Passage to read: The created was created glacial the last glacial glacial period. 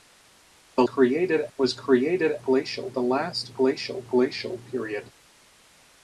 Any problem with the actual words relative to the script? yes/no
no